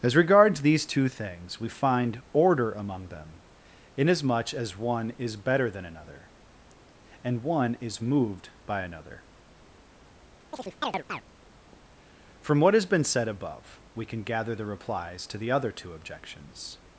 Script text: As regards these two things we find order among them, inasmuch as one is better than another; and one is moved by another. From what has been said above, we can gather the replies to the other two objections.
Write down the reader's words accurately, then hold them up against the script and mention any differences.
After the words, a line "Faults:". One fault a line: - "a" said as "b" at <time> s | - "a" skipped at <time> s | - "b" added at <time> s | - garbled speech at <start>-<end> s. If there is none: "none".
As regards these two things we find order among them, inasmuch as one is better than another; and one is moved by another. From what has been said above, we can gather the replies to the other two objections.
Faults:
none